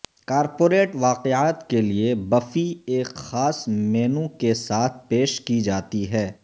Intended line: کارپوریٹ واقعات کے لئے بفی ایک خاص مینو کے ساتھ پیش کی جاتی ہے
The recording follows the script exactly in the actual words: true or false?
true